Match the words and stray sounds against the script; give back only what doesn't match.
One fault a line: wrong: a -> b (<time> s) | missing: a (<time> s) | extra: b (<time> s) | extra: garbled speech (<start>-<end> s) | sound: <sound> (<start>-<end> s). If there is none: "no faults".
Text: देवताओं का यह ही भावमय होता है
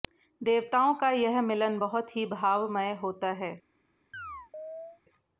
extra: मिलन बहुत (1.4 s)
sound: chirp (4.1-5.0 s)